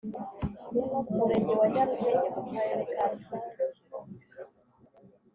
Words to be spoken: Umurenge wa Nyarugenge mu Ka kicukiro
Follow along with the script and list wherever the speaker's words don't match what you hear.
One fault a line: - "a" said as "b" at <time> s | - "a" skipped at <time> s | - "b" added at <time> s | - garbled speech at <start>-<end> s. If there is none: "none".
- "Karere" added at 2.5 s